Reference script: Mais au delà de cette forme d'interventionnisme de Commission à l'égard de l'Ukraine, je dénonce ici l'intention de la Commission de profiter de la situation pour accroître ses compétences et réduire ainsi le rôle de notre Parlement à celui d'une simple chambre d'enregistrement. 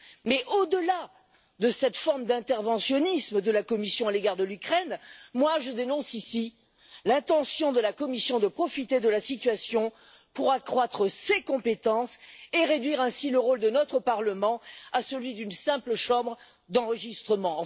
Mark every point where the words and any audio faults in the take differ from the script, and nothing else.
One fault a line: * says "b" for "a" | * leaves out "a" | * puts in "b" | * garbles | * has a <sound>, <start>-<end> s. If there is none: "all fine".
* puts in "la"